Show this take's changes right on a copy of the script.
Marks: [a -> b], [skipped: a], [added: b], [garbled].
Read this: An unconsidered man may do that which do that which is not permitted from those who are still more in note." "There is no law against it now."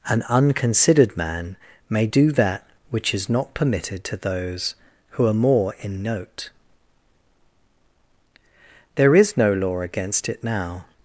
An unconsidered man may do that which [skipped: do that which] is not permitted [from -> to] those who are [skipped: still] more in note." "There is no law against it now."